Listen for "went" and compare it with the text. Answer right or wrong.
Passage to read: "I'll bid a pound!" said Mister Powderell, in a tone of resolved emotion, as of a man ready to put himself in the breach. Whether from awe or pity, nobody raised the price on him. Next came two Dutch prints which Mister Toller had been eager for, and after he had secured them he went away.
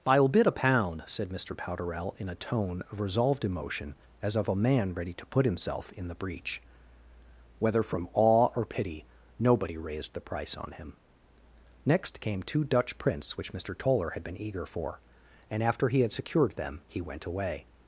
right